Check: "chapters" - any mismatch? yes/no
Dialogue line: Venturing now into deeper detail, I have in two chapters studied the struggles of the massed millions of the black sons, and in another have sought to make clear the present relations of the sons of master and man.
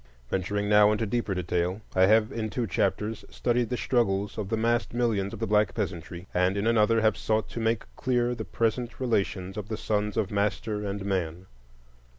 no